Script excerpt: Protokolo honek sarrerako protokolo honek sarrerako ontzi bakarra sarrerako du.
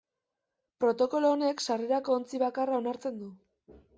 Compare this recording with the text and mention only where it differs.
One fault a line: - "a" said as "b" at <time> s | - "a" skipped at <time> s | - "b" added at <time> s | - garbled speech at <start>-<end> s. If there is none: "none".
- "protokolo honek sarrerako" skipped at 2.2 s
- "sarrerako" said as "onartzen" at 2.8 s